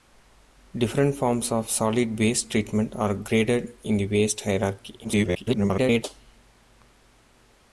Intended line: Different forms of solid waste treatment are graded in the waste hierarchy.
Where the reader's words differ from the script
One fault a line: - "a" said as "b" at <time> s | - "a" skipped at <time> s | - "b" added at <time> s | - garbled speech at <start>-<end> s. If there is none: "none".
- garbled speech at 5.0-6.0 s